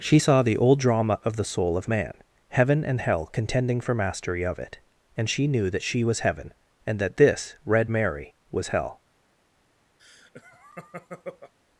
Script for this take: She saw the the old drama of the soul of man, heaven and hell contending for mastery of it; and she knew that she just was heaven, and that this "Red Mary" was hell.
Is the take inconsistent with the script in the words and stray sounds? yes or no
yes